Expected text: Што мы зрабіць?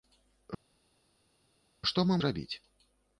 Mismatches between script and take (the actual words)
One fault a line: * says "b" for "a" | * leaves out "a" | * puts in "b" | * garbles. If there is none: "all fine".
all fine